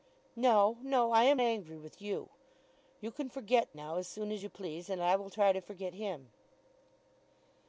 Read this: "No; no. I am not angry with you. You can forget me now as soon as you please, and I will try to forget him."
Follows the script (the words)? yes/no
no